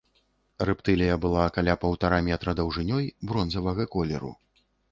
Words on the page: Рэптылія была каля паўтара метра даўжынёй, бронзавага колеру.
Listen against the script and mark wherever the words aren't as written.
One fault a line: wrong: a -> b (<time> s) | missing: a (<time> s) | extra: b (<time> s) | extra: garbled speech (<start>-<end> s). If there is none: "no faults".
no faults